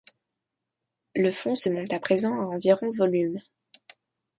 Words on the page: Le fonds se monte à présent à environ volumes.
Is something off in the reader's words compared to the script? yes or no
no